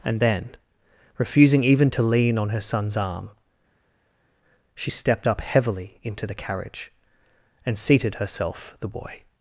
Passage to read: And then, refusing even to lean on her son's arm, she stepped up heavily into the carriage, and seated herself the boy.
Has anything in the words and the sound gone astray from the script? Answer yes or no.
no